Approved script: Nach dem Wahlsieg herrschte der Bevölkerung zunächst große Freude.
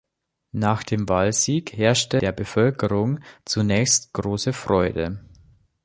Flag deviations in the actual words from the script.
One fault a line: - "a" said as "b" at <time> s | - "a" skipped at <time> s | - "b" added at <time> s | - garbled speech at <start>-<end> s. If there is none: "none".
none